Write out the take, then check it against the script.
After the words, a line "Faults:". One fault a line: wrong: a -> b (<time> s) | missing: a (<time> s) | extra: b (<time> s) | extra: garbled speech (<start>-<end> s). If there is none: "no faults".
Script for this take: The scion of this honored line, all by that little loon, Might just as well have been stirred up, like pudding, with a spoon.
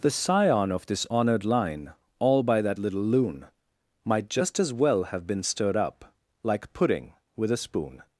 The scion of this honored line, all by that little loon, Might just as well have been stirred up, like pudding, with a spoon.
Faults:
no faults